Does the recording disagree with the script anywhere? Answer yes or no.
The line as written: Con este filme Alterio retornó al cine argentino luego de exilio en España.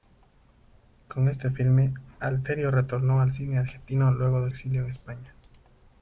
no